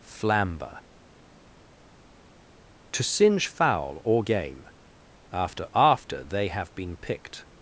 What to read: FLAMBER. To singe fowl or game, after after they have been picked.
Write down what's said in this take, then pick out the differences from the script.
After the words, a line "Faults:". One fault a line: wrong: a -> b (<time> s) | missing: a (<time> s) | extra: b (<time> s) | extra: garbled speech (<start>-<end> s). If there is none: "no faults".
FLAMBER. To singe fowl or game, after after they have been picked.
Faults:
no faults